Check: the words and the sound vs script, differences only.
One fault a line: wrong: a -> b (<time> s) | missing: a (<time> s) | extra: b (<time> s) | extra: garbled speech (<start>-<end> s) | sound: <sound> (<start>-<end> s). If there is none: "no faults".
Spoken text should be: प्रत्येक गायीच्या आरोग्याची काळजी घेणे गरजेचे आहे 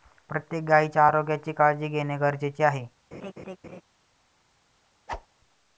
sound: laugh (3.1-3.8 s)
sound: whoosh (5.1-5.3 s)